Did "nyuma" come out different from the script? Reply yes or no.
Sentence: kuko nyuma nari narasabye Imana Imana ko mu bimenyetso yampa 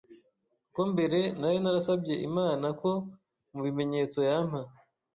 yes